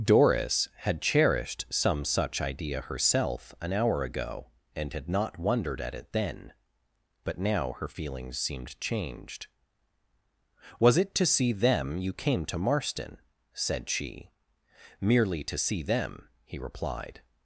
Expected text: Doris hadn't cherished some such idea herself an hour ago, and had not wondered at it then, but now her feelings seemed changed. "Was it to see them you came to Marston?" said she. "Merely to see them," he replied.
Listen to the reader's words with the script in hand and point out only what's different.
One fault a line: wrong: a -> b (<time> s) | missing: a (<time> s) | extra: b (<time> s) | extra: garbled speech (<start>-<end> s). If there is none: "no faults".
wrong: hadn't -> had (0.8 s)